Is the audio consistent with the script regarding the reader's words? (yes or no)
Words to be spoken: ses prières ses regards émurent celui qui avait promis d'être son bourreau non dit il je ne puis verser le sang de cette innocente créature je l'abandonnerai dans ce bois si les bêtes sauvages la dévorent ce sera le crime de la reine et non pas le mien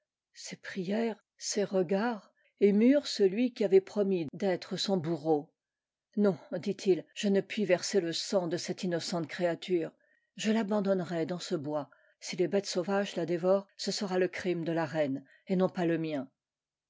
yes